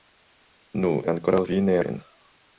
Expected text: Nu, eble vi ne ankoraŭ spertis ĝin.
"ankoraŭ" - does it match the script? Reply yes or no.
no